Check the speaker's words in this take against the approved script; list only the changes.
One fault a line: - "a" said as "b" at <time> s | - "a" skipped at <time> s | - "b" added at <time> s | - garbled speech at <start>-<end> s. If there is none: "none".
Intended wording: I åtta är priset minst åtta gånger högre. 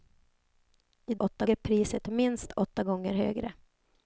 none